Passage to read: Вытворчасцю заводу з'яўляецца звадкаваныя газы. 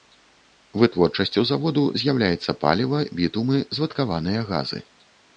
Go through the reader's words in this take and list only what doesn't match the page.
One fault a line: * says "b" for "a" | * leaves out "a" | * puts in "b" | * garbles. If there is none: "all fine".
* puts in "паліва бітумы"